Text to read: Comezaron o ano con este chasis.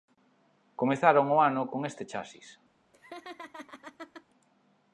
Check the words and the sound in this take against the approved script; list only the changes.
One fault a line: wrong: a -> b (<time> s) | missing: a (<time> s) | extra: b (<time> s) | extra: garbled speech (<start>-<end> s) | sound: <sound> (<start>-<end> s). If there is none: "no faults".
sound: laugh (2.9-4.3 s)